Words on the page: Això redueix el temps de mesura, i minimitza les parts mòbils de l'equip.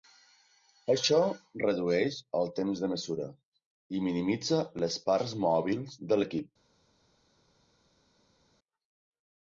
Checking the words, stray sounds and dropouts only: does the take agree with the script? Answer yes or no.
yes